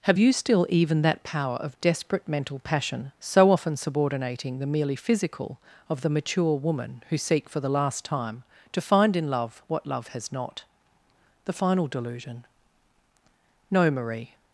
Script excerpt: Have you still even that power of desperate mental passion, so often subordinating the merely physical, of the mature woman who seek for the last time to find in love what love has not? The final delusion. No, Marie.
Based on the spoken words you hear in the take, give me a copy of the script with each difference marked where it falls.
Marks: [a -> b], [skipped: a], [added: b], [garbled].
Have you still even that power of desperate mental passion, so often subordinating the merely physical, of the mature woman who seek for the last time to find in love what love has not? The final delusion. No, Marie.